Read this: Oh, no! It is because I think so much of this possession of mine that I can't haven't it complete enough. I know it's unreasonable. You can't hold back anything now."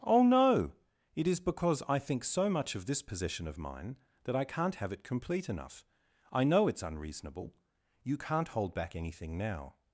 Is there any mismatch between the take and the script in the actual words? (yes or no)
yes